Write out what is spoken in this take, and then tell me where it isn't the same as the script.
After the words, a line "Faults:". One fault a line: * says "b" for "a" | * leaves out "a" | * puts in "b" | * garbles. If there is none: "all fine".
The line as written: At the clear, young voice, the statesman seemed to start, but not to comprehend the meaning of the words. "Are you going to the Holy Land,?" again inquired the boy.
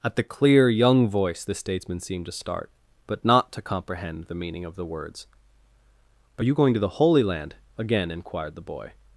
At the clear, young voice, the statesman seemed to start, but not to comprehend the meaning of the words. "Are you going to the Holy Land,?" again inquired the boy.
Faults:
all fine